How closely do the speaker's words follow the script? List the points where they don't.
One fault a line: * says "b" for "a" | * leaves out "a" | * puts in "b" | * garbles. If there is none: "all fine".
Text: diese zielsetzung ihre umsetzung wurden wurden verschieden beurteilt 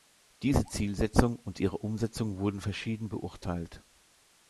* puts in "und"
* leaves out "wurden"